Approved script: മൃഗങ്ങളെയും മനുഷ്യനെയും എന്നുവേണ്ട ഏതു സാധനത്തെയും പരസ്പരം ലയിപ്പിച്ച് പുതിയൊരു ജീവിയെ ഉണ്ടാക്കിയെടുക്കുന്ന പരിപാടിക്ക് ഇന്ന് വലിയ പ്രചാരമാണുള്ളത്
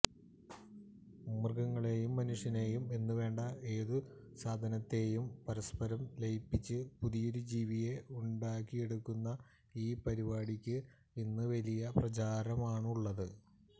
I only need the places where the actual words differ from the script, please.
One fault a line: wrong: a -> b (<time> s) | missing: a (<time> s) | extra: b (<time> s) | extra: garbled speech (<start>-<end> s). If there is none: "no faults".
extra: ഈ (9.8 s)